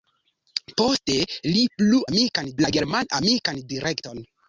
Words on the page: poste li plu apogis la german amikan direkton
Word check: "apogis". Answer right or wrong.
wrong